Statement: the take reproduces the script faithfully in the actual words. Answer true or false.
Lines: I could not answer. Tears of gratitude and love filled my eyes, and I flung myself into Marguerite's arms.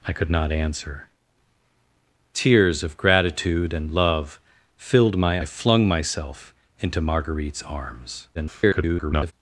false